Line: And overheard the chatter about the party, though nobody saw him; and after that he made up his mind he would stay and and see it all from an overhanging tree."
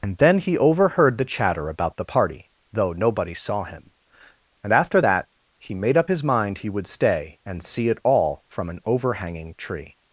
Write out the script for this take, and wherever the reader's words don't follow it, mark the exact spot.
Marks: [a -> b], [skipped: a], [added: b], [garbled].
And [added: then he] overheard the chatter about the party, though nobody saw him; and after that he made up his mind he would stay and [skipped: and] see it all from an overhanging tree."